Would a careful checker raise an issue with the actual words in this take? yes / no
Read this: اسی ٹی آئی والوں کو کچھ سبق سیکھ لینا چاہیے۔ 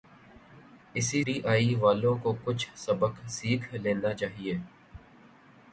no